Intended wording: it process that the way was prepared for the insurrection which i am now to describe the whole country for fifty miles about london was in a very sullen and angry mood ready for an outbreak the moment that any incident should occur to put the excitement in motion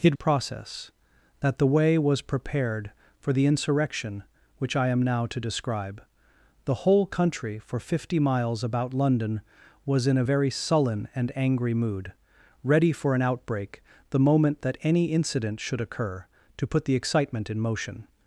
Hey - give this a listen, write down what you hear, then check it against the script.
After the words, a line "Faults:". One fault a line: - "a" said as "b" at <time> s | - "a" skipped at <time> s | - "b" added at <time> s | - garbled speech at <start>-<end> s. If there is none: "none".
it process that the way was prepared for the insurrection which i am now to describe the whole country for fifty miles about london was in a very sullen and angry mood ready for an outbreak the moment that any incident should occur to put the excitement in motion
Faults:
none